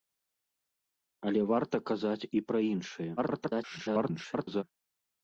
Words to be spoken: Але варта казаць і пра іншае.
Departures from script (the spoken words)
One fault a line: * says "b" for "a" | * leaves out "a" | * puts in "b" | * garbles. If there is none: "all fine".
* garbles